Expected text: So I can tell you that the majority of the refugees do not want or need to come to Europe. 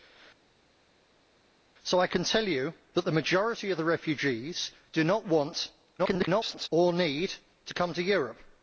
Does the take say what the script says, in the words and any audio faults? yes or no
no